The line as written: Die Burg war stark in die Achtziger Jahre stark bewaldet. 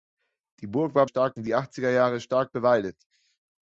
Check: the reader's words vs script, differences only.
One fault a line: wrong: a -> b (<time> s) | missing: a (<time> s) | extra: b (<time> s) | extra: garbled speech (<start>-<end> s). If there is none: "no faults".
no faults